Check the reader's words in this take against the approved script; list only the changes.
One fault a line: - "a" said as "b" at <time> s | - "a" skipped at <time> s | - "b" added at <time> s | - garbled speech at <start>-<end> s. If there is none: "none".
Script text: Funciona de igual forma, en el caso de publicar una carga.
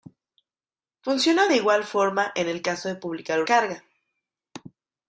- "una" skipped at 3.4 s